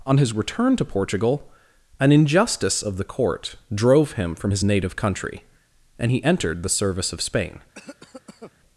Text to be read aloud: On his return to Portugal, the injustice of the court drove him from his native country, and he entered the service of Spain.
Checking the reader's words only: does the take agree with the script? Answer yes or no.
no